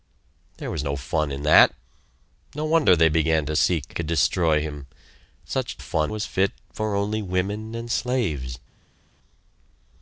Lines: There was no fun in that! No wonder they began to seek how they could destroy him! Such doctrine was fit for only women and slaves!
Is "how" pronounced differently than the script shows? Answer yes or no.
yes